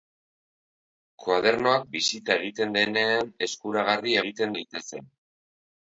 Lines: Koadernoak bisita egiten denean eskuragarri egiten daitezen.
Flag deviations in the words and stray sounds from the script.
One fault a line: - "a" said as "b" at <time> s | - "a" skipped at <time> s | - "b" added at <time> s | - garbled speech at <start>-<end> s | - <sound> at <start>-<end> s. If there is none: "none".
none